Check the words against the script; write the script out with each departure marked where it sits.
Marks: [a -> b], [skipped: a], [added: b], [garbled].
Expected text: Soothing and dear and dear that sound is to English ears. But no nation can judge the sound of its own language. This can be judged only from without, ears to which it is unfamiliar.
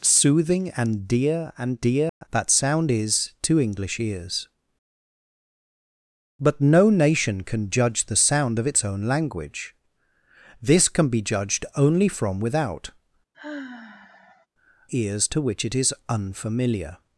Soothing and dear and dear that sound is to English ears. But no nation can judge the sound of its own language. This can be judged only from without, ears to which it is unfamiliar.